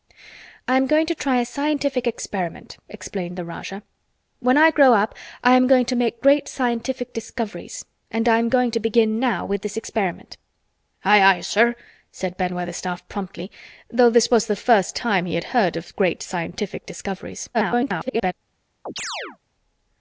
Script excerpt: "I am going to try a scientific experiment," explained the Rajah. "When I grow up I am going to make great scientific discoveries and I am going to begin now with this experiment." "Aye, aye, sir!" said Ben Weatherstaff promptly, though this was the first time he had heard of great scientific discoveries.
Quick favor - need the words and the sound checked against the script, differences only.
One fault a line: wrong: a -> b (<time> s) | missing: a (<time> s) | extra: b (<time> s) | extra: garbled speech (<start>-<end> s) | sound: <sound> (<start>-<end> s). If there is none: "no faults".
extra: garbled speech (17.5-18.3 s)
sound: chirp (18.9-19.4 s)